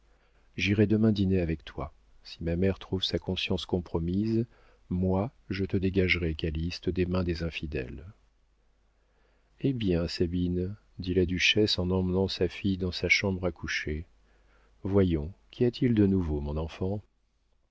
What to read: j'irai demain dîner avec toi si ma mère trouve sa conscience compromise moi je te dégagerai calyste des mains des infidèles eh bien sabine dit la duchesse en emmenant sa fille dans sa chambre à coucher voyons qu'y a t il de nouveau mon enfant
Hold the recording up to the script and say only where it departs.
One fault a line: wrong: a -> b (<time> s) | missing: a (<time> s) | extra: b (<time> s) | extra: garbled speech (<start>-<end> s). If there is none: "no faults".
no faults